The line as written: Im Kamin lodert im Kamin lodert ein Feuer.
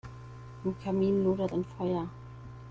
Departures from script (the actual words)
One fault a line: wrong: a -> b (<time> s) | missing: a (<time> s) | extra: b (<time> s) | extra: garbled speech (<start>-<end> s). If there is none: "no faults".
missing: im Kamin lodert (1.6 s)